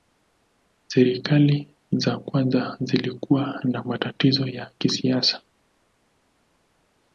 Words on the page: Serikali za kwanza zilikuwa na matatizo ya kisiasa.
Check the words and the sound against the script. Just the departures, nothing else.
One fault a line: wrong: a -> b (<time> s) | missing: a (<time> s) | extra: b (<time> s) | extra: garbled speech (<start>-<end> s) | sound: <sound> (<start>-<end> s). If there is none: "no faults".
no faults